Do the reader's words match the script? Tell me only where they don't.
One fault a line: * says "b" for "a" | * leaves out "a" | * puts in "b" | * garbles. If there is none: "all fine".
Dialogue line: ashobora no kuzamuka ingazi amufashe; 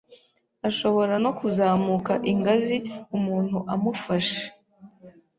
* puts in "umuntu"